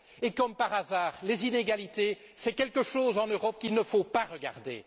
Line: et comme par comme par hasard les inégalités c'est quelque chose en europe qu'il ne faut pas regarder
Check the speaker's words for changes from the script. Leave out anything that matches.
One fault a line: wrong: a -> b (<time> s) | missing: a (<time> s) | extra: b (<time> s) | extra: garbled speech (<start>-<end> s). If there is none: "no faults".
missing: comme par (0.7 s)